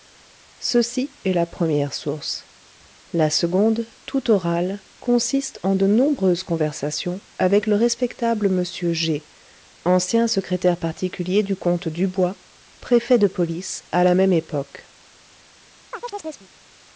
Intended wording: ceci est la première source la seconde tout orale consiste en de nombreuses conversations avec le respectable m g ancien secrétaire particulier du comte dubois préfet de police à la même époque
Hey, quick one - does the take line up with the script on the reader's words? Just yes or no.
yes